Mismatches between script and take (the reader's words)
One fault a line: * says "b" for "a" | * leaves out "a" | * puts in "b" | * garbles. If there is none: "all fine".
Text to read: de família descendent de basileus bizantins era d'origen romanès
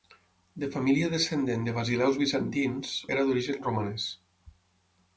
all fine